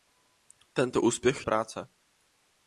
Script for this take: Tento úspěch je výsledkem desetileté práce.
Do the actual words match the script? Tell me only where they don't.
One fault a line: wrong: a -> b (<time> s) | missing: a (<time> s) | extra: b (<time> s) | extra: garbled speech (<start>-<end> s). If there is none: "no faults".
missing: je výsledkem desetileté (1.4 s)